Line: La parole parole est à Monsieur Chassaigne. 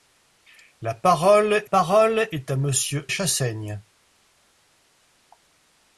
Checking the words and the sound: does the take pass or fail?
pass